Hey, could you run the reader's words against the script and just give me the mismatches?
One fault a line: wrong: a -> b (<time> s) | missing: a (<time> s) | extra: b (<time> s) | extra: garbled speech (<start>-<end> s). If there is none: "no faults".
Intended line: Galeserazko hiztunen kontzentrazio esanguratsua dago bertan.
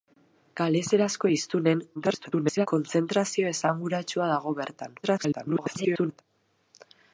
extra: garbled speech (1.9-2.7 s)
extra: garbled speech (5.0-6.2 s)